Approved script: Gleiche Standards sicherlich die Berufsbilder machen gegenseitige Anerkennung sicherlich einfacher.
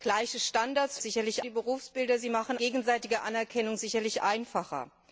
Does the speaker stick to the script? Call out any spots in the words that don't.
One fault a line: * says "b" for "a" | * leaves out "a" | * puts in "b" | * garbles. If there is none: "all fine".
all fine